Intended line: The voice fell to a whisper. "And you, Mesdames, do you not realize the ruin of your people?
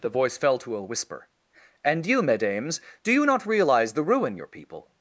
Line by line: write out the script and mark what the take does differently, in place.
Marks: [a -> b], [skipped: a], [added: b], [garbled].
The voice fell to a whisper. "And you, Mesdames, do you not realize the ruin [skipped: of] your people?